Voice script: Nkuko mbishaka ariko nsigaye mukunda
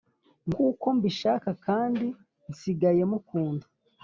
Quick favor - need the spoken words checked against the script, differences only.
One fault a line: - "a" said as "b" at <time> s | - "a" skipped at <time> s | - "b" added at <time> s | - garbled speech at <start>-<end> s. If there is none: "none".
- "ariko" said as "kandi" at 1.6 s